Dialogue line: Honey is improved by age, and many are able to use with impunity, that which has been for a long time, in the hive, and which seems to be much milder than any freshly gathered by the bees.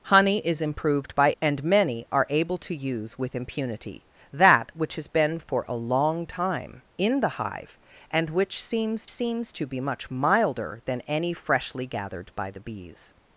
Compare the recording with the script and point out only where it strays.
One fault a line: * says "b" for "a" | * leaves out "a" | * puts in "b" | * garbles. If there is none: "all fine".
* leaves out "age"
* puts in "seems"